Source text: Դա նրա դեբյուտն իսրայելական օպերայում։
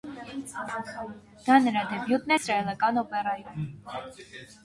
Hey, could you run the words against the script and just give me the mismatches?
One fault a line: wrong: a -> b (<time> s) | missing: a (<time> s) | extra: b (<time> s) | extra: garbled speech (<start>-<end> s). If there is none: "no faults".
no faults